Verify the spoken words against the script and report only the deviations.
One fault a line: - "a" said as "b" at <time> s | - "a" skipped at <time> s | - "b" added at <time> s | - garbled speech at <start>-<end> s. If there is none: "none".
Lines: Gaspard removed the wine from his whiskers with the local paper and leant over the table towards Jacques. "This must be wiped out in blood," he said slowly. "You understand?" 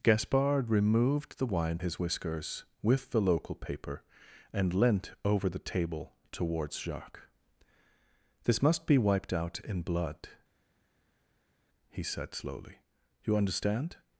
- "from" skipped at 1.8 s